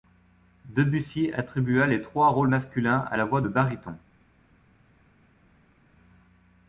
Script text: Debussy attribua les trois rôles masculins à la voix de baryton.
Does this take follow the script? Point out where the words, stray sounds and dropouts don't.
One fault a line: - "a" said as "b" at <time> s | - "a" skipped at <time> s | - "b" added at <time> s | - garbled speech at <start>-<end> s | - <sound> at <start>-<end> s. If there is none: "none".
none